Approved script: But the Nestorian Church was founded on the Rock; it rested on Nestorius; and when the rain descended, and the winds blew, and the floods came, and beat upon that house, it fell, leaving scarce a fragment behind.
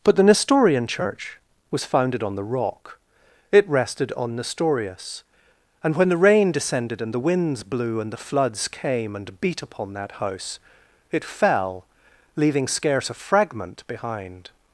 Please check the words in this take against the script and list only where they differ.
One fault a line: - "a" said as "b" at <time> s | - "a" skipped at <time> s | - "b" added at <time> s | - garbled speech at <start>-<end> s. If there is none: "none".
none